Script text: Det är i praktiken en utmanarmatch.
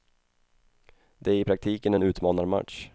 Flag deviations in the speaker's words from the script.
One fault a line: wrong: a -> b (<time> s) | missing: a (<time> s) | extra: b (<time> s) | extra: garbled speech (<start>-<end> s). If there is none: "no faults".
no faults